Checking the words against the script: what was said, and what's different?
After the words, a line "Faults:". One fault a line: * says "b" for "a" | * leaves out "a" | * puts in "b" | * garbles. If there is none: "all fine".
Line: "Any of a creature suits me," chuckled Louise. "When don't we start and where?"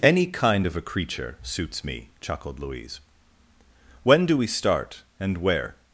"Any kind of a creature suits me," chuckled Louise. "When do we start and where?"
Faults:
* puts in "kind"
* says "do" for "don't"